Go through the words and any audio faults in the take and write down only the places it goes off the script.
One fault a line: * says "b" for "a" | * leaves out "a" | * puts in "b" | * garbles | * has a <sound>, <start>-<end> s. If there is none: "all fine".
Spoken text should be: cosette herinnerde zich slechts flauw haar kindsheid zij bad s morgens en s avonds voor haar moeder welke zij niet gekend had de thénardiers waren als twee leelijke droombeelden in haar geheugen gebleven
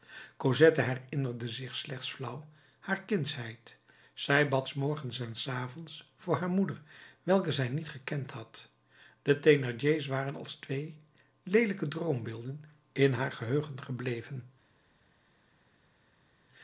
all fine